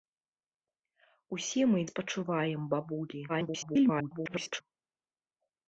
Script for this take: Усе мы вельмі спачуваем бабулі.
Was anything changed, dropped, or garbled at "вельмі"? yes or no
yes